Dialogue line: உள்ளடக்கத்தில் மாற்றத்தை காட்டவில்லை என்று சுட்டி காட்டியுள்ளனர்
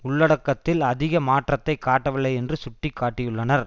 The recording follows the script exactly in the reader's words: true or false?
false